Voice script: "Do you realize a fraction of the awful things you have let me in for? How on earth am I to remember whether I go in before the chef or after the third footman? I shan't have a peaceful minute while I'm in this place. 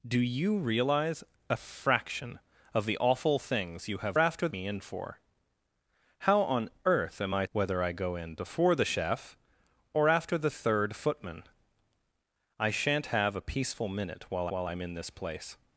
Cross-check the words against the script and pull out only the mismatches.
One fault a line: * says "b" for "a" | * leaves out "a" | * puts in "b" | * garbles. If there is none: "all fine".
* says "after" for "let"
* leaves out "to remember"
* puts in "while"